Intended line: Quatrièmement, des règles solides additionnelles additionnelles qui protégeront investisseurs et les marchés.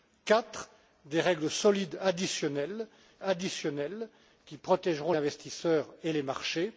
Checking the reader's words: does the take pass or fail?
pass